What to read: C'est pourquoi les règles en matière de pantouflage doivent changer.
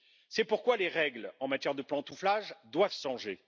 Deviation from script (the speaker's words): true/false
false